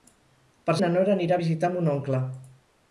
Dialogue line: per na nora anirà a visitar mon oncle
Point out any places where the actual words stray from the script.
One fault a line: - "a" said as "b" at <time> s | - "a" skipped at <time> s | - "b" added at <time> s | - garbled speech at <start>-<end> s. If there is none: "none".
none